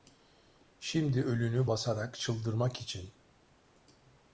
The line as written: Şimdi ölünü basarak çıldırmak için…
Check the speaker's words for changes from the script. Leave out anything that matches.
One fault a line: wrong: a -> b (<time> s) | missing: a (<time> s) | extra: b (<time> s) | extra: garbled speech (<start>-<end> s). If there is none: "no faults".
no faults